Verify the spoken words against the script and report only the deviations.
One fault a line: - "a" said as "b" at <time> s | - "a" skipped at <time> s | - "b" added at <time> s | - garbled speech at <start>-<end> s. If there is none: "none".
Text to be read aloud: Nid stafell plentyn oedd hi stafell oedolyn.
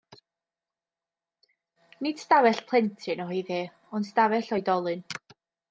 - "ond" added at 4.0 s